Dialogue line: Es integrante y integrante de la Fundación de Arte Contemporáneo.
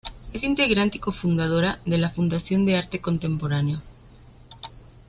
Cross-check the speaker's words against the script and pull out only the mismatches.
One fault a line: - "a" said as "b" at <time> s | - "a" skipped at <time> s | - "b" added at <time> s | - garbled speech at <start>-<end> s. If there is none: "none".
- "integrante" said as "cofundadora" at 1.0 s